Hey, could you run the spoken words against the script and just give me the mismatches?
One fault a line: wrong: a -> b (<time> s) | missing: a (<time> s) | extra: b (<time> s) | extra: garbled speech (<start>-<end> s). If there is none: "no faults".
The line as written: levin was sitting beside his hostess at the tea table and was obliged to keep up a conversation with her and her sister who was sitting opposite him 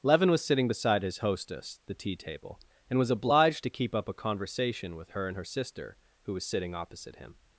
missing: at (1.8 s)